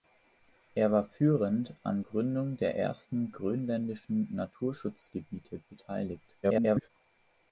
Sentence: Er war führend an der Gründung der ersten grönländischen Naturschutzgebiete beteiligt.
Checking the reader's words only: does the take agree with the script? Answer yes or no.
no